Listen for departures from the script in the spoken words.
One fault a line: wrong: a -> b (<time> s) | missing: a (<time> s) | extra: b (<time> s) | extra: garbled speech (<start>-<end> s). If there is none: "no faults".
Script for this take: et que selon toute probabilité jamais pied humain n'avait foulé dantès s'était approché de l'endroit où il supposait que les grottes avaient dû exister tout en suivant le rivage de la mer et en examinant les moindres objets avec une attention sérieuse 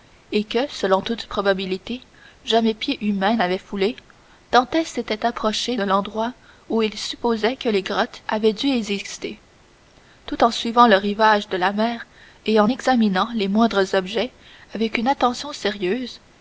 no faults